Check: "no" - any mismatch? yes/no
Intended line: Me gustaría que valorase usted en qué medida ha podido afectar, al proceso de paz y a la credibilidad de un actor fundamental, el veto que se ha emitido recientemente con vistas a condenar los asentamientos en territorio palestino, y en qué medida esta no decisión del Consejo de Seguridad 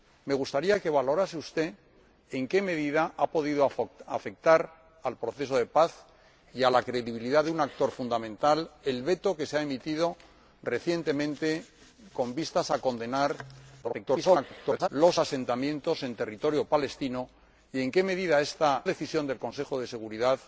yes